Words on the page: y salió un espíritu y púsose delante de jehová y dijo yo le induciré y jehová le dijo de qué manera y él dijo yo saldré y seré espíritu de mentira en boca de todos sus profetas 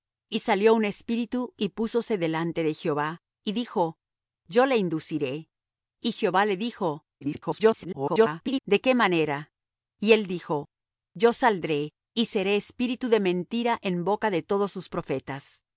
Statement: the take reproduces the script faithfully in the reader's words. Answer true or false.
false